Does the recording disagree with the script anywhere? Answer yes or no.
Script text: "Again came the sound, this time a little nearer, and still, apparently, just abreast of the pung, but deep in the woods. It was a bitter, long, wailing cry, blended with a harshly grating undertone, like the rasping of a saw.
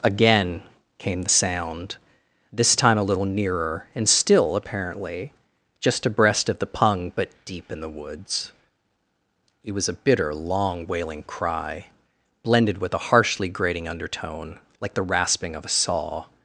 no